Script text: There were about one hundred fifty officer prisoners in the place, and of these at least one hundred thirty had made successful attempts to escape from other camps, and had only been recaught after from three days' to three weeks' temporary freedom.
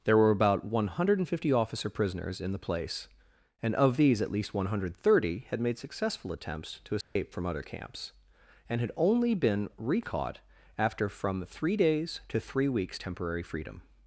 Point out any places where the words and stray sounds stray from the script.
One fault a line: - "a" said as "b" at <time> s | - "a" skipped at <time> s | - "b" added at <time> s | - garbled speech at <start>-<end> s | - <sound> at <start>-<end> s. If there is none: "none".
- dropout at 7.0-7.2 s